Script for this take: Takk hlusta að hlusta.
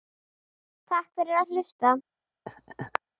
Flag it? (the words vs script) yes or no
yes